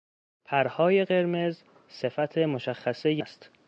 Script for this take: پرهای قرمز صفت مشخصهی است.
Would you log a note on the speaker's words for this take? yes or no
no